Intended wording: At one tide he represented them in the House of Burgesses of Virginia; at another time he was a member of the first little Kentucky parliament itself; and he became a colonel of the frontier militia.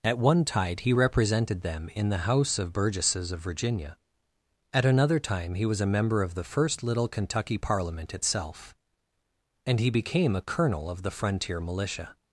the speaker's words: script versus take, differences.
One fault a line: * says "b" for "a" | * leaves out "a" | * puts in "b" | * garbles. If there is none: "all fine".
all fine